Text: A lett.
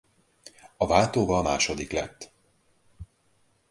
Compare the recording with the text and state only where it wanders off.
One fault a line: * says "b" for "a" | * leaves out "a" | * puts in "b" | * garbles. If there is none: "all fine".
* puts in "váltóval második"